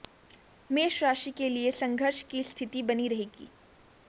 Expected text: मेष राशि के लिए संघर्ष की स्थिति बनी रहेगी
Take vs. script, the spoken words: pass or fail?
pass